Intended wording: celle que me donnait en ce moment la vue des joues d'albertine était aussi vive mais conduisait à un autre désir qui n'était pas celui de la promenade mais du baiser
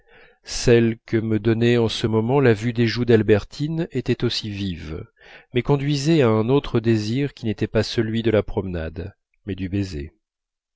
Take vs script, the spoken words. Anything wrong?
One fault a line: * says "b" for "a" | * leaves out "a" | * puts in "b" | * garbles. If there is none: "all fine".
all fine